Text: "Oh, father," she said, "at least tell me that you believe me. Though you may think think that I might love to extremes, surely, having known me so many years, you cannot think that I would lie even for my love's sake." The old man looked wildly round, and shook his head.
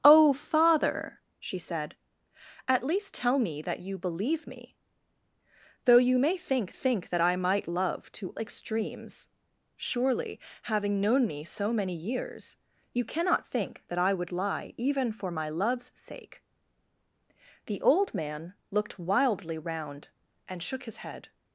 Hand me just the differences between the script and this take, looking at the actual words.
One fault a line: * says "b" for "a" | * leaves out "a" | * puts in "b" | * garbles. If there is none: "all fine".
all fine